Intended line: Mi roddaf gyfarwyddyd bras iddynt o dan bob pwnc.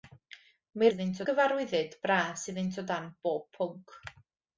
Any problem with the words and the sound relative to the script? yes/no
yes